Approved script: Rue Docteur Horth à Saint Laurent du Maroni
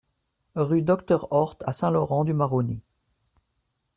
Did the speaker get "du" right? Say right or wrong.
right